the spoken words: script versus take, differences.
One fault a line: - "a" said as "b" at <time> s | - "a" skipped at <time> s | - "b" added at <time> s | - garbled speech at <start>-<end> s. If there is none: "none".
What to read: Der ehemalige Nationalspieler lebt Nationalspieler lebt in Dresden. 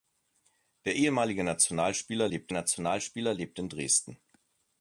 none